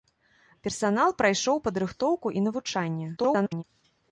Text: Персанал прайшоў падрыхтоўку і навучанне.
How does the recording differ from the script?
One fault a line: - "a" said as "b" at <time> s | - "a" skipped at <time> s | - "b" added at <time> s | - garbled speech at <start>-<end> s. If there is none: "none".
- garbled speech at 3.2-3.6 s